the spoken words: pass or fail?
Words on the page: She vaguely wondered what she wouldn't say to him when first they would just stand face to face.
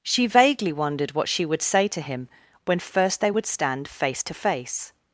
fail